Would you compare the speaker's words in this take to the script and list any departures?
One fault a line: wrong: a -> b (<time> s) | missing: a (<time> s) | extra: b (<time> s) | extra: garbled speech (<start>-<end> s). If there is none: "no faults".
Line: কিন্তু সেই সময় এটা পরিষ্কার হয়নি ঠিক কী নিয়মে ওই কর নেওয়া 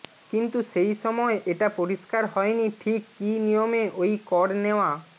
no faults